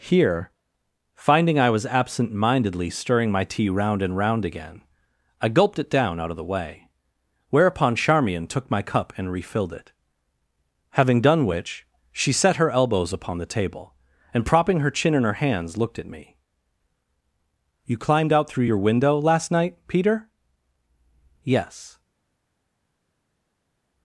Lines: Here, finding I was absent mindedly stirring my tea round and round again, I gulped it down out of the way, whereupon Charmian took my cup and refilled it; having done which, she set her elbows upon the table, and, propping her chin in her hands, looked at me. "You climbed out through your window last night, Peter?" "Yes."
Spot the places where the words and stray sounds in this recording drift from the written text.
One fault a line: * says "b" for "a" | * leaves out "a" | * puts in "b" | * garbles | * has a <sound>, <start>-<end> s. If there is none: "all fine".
all fine